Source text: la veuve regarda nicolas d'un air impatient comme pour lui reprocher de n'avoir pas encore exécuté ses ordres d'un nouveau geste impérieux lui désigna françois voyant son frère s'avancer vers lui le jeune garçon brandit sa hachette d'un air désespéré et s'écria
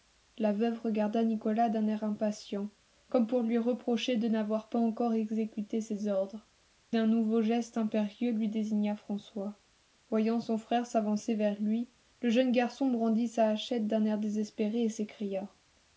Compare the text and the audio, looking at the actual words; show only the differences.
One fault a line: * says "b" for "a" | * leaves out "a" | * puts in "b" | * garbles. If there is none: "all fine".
all fine